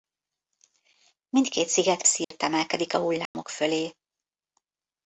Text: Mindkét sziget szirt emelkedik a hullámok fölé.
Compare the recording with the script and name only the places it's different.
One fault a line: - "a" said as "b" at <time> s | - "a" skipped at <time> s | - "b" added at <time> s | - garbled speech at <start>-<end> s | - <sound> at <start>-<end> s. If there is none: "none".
- dropout at 2.2-2.3 s
- dropout at 3.3-3.3 s